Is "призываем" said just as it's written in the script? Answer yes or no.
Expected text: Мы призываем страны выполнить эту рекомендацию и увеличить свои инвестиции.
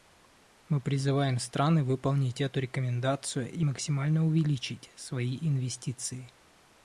yes